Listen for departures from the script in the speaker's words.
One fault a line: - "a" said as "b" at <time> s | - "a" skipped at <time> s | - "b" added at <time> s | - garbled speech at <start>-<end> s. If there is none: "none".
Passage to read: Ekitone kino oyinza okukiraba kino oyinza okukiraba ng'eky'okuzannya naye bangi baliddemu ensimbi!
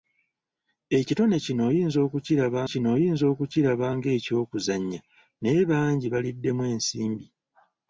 none